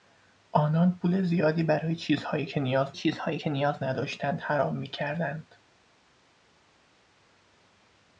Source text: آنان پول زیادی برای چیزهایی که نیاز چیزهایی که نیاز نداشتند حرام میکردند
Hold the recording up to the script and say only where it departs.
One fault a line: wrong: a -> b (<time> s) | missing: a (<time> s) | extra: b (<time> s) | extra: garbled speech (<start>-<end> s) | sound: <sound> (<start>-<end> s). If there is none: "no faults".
no faults